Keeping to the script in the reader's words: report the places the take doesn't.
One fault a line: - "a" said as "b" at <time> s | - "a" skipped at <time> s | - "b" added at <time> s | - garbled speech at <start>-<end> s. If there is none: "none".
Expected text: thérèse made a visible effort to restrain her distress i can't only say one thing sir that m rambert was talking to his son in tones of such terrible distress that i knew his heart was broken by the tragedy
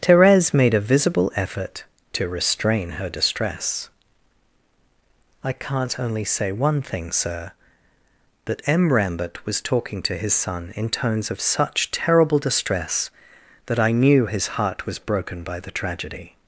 none